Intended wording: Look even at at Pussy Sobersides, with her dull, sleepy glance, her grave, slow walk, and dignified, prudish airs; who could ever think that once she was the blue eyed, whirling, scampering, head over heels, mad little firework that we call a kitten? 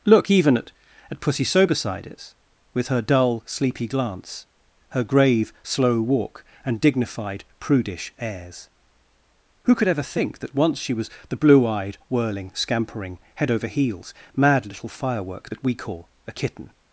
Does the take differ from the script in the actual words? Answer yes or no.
no